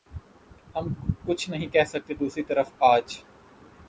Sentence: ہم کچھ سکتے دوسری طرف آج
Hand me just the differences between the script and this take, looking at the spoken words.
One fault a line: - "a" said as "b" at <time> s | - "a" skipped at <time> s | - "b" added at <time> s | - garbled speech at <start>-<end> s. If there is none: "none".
- "نہیں کہہ" added at 1.5 s